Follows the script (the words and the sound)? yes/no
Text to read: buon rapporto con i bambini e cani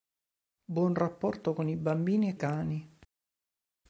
yes